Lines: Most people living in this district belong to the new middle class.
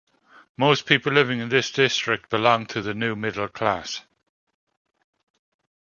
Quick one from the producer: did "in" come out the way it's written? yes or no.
yes